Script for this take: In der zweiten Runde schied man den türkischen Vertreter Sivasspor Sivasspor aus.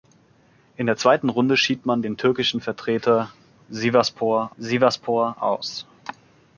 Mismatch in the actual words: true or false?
false